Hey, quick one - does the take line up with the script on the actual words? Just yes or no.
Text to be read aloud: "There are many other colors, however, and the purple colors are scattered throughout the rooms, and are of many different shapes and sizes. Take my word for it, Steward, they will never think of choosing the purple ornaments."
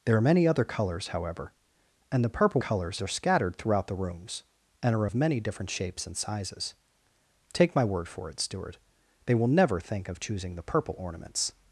yes